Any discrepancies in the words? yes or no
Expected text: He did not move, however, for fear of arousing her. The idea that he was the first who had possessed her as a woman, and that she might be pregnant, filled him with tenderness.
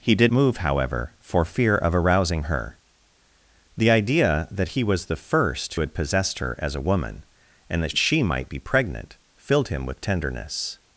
yes